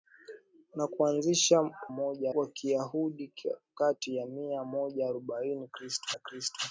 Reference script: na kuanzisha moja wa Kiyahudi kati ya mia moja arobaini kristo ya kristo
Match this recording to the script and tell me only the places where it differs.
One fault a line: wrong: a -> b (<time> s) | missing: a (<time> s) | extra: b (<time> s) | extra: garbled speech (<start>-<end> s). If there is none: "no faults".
no faults